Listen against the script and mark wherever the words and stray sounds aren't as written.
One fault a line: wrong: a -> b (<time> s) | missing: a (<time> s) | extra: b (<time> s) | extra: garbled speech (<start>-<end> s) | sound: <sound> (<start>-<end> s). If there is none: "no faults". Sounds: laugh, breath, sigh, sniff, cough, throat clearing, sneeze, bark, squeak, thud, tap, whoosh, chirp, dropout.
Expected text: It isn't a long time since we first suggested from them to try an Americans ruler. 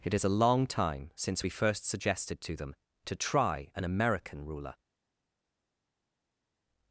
wrong: isn't -> is (0.1 s)
wrong: from -> to (2.4 s)
wrong: Americans -> American (3.8 s)